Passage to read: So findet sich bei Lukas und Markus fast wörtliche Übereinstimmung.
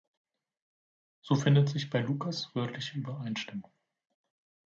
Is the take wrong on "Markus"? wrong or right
wrong